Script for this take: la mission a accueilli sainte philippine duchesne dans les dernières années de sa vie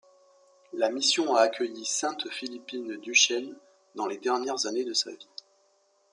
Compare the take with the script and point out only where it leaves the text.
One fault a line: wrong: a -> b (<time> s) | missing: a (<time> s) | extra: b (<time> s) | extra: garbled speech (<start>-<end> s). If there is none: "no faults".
no faults